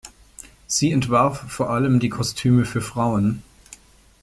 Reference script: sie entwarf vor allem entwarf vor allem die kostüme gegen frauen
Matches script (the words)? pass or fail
fail